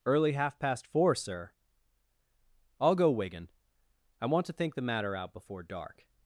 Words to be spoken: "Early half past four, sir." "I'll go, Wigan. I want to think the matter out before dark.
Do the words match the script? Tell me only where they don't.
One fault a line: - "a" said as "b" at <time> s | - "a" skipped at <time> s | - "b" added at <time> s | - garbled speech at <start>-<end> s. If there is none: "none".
none